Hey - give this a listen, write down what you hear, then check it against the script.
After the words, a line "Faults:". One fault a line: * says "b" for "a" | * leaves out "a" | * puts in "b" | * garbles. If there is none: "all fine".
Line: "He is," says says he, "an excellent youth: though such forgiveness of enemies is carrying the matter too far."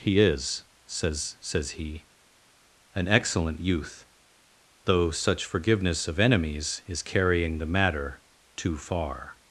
"He is," says says he, "an excellent youth: though such forgiveness of enemies is carrying the matter too far."
Faults:
all fine